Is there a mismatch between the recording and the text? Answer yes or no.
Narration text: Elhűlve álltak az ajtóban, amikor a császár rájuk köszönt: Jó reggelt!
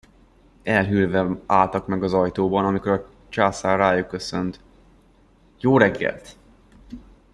yes